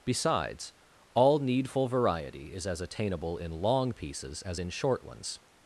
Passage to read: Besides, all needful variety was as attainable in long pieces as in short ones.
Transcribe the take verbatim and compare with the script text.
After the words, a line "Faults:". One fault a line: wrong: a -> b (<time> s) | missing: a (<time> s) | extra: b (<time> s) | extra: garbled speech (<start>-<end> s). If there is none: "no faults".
Besides, all needful variety is as attainable in long pieces as in short ones.
Faults:
wrong: was -> is (2.5 s)